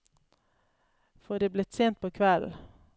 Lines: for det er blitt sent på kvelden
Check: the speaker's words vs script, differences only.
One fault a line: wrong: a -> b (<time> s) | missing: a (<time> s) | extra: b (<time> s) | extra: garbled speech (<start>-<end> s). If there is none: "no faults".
no faults